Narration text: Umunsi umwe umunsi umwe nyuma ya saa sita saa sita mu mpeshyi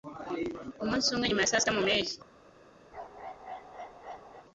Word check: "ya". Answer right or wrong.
right